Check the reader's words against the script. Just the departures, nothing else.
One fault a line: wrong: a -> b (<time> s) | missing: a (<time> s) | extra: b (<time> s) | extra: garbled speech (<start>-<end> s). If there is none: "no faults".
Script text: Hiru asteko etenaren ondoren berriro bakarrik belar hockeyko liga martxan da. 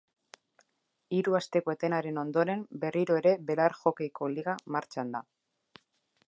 wrong: bakarrik -> ere (3.2 s)